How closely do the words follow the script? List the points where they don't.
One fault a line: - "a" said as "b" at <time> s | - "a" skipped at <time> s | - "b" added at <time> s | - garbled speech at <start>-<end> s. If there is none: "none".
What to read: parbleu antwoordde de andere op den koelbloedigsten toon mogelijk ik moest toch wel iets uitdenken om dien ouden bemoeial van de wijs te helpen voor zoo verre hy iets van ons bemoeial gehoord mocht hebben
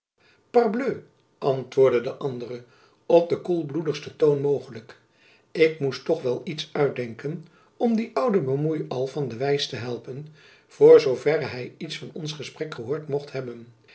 - "bemoeial" said as "gesprek" at 12.3 s